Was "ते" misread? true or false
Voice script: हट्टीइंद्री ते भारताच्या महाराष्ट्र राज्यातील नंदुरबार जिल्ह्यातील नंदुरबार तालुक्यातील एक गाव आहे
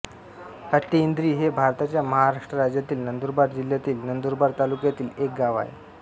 true